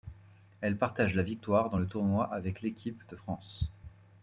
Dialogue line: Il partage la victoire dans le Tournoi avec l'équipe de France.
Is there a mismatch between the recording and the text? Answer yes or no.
yes